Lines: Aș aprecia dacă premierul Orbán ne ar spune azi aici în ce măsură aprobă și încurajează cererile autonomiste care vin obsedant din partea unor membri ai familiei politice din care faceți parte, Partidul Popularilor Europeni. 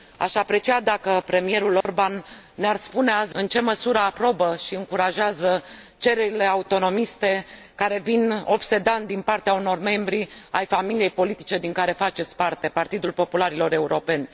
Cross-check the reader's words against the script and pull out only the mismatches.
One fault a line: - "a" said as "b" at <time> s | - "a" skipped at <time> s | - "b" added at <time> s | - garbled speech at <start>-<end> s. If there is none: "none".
- "aici" skipped at 3.4 s